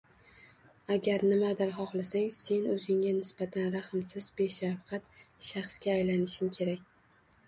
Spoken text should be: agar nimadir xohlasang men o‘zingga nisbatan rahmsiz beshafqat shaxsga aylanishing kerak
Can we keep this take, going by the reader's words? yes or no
no